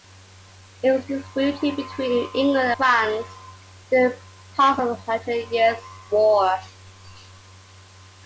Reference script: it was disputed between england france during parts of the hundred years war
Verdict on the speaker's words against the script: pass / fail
pass